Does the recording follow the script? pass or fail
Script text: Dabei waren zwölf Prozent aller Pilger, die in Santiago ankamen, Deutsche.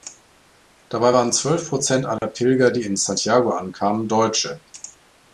pass